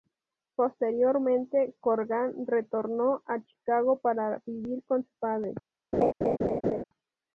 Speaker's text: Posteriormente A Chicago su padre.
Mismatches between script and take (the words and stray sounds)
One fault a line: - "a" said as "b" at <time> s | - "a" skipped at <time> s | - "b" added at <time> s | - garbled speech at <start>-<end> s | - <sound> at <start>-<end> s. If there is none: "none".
- "Corgan retornó" added at 1.8 s
- "para vivir con" added at 4.0 s
- laugh at 5.9-6.8 s